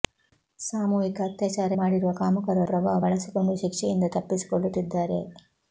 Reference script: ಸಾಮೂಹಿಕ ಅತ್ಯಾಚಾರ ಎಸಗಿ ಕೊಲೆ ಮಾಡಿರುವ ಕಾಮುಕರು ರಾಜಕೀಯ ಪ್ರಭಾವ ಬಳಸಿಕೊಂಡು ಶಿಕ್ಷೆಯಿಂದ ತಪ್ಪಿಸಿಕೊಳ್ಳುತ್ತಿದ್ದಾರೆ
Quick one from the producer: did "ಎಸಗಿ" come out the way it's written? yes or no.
no